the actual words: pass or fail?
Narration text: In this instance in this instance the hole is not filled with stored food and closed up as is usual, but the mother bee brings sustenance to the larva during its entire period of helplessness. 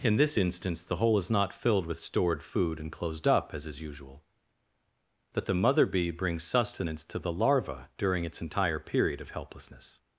fail